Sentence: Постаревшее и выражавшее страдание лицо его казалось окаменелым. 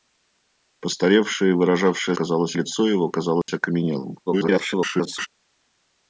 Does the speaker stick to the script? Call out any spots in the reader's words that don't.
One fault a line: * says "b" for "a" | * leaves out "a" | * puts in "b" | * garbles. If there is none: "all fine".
* says "казалось" for "страдание"
* garbles